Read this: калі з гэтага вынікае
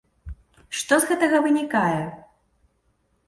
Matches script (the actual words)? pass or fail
fail